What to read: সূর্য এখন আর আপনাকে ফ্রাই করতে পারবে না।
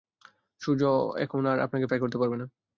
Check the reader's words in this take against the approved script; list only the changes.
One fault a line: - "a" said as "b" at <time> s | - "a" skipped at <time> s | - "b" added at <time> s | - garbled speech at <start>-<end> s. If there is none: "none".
none